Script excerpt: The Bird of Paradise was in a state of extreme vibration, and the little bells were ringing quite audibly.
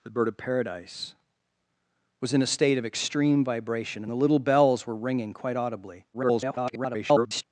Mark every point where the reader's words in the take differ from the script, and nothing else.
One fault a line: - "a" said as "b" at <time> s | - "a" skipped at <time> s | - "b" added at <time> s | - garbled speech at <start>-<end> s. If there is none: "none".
- garbled speech at 6.1-7.4 s